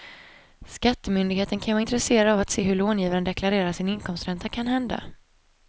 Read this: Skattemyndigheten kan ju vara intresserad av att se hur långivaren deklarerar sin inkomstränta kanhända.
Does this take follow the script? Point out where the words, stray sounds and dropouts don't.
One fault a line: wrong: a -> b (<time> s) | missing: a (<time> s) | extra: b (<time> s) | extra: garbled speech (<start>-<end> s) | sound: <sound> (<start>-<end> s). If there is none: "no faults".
no faults